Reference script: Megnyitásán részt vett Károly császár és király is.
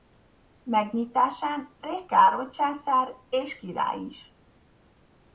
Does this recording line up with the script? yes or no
no